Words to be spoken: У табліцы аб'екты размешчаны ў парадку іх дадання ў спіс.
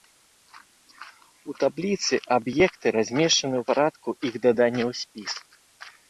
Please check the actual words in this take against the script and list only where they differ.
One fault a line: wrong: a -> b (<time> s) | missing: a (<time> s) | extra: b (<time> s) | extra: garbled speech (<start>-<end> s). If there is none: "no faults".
no faults